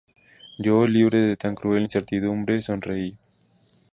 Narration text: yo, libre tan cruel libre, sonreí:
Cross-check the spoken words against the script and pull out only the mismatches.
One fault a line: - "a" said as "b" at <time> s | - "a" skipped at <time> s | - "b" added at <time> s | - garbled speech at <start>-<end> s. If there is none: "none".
- "de" added at 1.2 s
- "libre" said as "incertidumbre" at 1.8 s